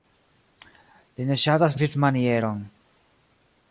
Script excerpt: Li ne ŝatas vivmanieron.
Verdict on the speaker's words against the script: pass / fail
pass